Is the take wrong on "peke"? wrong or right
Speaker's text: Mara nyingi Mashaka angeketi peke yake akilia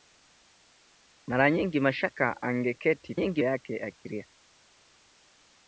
wrong